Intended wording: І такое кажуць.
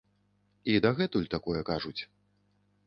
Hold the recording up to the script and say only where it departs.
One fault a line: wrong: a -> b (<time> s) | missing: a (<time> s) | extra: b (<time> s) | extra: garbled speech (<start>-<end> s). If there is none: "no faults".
extra: дагэтуль (0.8 s)